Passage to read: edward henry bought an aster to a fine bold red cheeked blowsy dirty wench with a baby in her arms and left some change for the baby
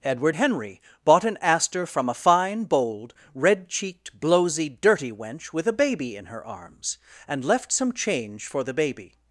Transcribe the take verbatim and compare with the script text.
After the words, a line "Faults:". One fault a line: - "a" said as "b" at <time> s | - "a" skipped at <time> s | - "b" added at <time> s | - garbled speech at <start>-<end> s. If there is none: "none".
edward henry bought an aster from a fine bold red cheeked blowsy dirty wench with a baby in her arms and left some change for the baby
Faults:
- "to" said as "from" at 1.9 s